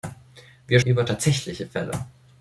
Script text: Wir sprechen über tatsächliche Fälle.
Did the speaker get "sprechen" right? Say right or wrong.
wrong